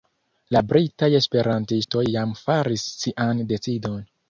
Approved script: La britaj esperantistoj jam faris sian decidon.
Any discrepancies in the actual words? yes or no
no